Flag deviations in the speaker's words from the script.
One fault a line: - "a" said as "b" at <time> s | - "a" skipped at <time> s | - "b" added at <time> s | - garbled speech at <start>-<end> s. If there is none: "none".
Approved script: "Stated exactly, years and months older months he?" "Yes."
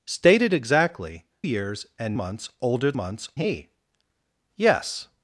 none